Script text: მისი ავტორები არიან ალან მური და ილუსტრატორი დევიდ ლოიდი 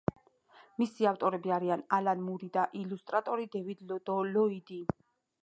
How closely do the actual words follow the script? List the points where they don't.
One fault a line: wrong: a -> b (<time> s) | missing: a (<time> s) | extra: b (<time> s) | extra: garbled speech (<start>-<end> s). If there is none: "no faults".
no faults